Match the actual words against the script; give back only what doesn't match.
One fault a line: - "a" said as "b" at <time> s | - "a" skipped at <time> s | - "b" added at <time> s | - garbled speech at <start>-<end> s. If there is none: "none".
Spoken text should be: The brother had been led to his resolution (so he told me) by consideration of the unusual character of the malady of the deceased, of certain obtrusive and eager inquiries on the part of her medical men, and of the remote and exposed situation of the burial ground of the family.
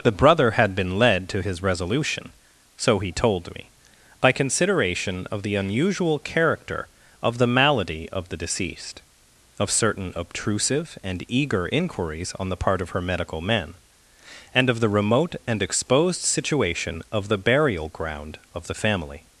none